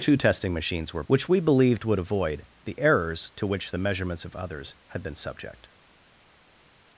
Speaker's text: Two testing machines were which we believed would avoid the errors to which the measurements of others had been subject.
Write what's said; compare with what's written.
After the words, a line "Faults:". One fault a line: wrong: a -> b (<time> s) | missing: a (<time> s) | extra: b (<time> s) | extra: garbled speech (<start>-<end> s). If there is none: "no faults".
Two testing machines were which we believed would avoid the errors to which the measurements of others had been subject.
Faults:
no faults